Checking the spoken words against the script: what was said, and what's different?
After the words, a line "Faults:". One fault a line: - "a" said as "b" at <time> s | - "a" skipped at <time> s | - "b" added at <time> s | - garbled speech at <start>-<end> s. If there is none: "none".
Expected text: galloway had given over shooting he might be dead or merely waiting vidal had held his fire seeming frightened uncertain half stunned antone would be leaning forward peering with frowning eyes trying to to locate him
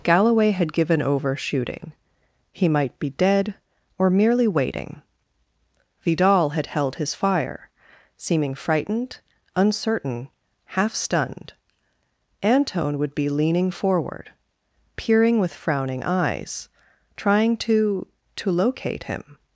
galloway had given over shooting he might be dead or merely waiting vidal had held his fire seeming frightened uncertain half stunned antone would be leaning forward peering with frowning eyes trying to to locate him
Faults:
none